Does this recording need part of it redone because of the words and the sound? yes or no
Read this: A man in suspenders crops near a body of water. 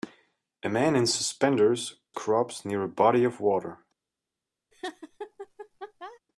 yes